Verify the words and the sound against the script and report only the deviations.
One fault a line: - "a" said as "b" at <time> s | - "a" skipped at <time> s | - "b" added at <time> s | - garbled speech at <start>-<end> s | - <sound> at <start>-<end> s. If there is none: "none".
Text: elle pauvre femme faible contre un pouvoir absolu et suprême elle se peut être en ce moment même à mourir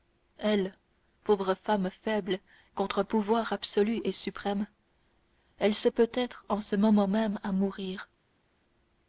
none